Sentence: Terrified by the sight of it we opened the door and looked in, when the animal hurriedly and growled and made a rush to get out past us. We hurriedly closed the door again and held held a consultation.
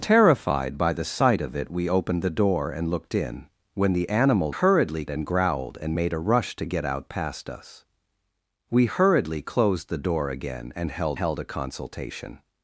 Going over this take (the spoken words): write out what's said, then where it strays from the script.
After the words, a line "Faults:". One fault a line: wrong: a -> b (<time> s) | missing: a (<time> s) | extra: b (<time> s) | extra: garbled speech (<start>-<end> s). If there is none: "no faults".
Terrified by the sight of it we opened the door and looked in, when the animal hurriedly and growled and made a rush to get out past us. We hurriedly closed the door again and held held a consultation.
Faults:
no faults